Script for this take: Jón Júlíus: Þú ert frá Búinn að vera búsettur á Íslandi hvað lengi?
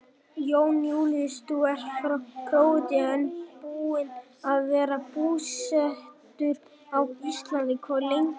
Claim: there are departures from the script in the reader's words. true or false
true